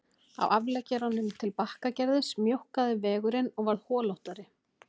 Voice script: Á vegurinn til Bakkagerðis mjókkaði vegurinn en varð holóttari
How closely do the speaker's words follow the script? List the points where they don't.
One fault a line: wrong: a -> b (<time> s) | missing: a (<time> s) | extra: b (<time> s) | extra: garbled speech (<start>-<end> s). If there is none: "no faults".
wrong: vegurinn -> afleggjaranum (0.6 s)
wrong: en -> og (3.6 s)